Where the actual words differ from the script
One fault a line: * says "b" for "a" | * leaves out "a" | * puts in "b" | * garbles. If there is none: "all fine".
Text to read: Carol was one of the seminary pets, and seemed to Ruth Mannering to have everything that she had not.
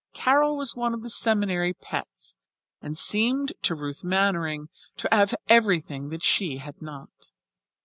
all fine